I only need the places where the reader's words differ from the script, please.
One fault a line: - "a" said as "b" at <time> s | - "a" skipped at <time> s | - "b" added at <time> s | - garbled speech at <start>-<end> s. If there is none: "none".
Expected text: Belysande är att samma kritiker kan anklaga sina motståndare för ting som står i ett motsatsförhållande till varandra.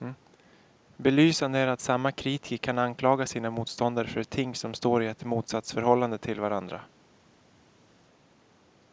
none